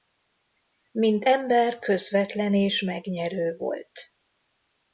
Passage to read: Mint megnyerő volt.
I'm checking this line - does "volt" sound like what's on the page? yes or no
yes